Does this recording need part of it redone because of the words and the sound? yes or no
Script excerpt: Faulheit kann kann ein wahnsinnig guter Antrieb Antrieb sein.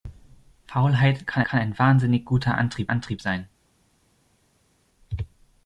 no